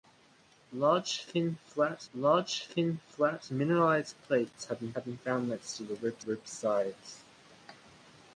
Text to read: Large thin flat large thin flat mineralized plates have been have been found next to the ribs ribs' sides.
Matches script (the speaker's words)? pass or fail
pass